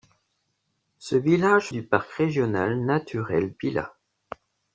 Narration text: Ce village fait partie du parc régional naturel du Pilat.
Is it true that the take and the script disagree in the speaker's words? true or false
true